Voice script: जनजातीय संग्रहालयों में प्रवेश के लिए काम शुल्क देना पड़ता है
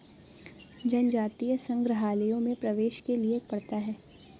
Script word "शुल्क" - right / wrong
wrong